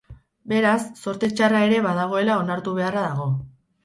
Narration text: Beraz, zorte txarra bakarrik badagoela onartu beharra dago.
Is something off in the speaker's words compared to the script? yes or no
yes